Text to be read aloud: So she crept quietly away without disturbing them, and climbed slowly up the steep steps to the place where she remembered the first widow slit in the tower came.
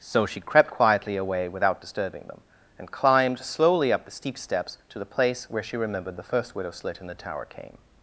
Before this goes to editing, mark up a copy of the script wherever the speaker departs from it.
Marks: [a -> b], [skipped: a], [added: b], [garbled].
So she crept quietly away without disturbing them, and climbed slowly up the steep steps to the place where she remembered the first widow slit in the tower came.